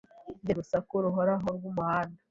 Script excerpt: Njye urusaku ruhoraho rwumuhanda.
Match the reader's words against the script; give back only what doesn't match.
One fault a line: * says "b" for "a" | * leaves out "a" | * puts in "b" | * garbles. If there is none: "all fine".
all fine